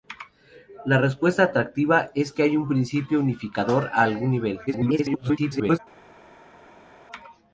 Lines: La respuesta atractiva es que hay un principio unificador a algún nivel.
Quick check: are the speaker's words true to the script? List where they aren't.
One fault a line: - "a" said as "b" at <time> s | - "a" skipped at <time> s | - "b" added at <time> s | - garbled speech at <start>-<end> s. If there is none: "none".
- garbled speech at 4.7-5.8 s